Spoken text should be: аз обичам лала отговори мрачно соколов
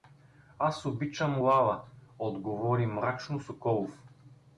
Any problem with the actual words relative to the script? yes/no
no